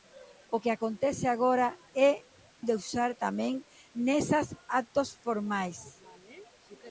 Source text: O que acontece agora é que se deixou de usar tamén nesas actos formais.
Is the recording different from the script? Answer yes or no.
yes